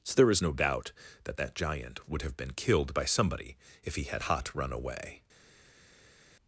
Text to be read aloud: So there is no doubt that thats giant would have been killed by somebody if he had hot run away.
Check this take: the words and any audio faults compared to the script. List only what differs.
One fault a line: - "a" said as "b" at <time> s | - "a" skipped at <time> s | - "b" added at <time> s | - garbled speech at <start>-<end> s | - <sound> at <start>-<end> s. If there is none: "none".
- "thats" said as "that" at 1.4 s